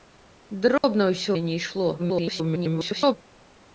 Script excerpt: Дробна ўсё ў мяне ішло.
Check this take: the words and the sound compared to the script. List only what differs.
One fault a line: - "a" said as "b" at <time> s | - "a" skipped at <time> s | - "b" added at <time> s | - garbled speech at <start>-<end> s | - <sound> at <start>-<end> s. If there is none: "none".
- dropout at 0.8-0.8 s
- "ў" skipped at 1.3 s
- garbled speech at 2.0-3.2 s